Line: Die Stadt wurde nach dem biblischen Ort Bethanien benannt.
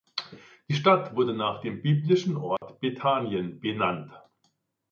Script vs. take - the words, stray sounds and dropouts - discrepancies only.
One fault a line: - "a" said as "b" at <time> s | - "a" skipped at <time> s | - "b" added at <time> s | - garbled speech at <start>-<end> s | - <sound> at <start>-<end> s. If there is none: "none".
- dropout at 2.6-2.6 s